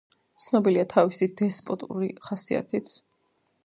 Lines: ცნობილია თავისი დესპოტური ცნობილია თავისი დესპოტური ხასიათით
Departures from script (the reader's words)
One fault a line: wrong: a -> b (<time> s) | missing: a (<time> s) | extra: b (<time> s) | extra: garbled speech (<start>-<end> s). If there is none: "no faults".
missing: ცნობილია თავისი დესპოტური (2.1 s)